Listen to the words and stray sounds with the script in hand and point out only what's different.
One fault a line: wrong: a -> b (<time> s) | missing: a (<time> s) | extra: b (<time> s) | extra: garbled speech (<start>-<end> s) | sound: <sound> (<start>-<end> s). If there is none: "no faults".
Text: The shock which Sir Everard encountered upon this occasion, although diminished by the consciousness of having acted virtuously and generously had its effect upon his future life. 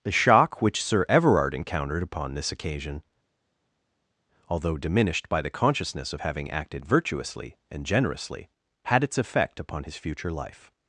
no faults